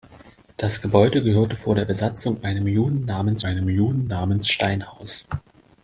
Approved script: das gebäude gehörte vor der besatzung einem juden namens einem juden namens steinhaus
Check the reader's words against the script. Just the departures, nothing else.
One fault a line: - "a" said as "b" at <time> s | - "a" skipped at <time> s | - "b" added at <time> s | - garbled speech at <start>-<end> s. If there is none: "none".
none